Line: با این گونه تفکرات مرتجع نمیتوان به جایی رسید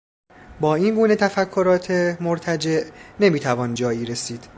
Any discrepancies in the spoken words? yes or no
yes